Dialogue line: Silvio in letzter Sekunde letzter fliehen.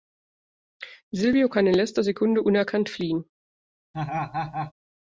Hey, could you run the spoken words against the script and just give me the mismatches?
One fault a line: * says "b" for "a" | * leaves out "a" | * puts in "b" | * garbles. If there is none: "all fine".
* puts in "kann"
* says "unerkannt" for "letzter"